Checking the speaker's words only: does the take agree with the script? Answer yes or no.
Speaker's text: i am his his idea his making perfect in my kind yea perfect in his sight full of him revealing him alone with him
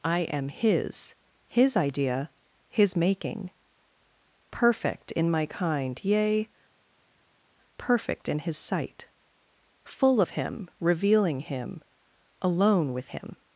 yes